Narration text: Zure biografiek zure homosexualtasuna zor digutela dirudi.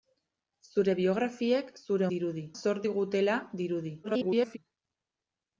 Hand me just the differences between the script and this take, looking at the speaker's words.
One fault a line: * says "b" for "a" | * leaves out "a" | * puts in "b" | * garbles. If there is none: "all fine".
* says "dirudi" for "homosexualtasuna"
* garbles